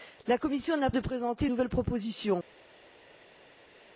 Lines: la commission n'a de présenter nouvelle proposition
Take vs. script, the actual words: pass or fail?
pass